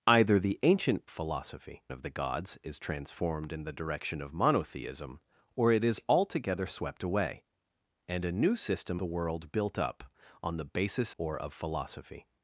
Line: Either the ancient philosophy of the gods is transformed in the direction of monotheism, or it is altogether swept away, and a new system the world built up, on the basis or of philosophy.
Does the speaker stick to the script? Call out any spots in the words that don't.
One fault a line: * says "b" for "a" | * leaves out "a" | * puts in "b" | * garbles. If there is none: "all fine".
all fine